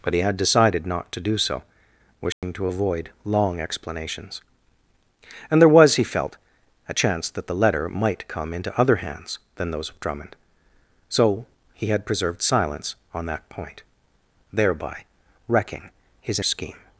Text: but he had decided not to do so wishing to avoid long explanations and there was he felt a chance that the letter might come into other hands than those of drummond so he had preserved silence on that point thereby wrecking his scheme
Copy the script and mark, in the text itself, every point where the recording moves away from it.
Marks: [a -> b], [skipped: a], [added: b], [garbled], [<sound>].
but he had decided not to do so wishing [dropout] to avoid long explanations and there was he felt a chance that the letter might come into other hands than those of drummond so he had preserved silence on that point thereby wrecking his scheme